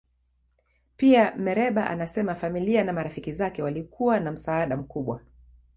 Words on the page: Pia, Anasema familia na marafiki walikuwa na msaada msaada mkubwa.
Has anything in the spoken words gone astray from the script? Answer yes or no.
yes